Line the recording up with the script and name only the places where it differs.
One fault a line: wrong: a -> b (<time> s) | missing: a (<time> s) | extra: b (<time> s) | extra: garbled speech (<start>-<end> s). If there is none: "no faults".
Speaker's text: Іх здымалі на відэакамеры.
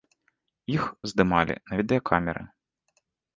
no faults